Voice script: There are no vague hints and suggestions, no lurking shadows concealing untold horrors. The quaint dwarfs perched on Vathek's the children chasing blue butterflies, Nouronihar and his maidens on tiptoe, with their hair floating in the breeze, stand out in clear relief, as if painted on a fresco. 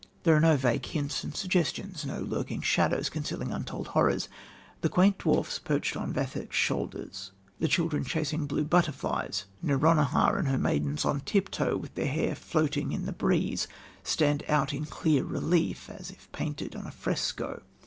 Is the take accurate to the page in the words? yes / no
no